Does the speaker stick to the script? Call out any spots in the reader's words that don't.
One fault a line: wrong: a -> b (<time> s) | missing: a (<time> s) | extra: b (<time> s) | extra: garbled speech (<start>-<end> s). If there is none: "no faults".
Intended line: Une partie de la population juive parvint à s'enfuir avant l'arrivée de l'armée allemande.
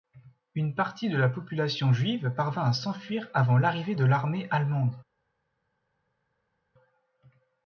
no faults